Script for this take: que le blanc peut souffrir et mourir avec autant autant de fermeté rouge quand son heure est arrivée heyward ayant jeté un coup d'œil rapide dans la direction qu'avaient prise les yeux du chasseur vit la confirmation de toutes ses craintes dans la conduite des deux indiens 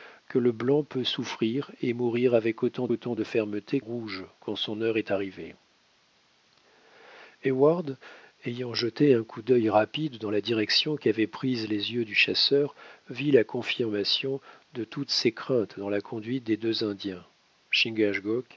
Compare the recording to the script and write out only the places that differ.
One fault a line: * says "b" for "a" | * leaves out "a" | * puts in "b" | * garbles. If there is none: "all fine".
all fine